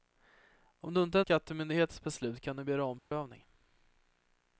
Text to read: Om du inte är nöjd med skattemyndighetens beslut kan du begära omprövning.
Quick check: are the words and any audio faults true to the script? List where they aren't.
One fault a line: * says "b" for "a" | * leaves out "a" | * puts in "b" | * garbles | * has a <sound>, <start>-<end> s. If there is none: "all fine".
* leaves out "nöjd med"
* has a dropout, 3.0-3.1 s